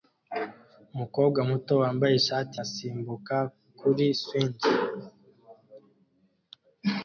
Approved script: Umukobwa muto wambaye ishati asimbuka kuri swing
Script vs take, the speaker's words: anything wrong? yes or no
no